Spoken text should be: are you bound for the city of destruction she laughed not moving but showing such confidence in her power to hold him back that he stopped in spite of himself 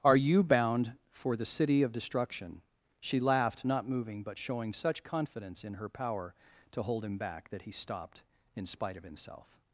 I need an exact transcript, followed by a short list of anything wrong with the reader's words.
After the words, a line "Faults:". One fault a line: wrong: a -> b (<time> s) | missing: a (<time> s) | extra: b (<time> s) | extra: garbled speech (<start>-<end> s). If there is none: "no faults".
are you bound for the city of destruction she laughed not moving but showing such confidence in her power to hold him back that he stopped in spite of himself
Faults:
no faults